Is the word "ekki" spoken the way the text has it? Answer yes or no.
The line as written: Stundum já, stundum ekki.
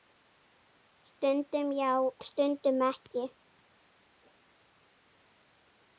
yes